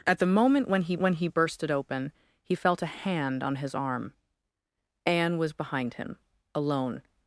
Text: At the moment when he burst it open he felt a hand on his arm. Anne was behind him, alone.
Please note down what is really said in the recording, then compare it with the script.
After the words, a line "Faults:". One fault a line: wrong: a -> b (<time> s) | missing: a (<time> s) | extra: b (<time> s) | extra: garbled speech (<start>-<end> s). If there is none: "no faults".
At the moment when he when he burst it open he felt a hand on his arm. Anne was behind him, alone.
Faults:
extra: when he (1.0 s)